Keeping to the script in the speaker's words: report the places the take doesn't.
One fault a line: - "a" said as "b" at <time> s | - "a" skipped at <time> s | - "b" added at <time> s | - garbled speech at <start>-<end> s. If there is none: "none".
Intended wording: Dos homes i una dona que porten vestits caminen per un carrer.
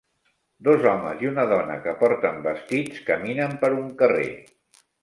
none